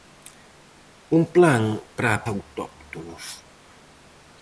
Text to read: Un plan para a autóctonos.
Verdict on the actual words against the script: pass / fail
pass